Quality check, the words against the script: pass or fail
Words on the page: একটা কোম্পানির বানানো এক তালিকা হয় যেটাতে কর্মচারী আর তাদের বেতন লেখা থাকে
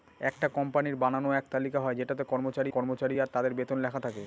fail